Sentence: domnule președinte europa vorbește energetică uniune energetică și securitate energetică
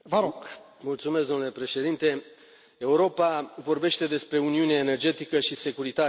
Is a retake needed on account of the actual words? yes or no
yes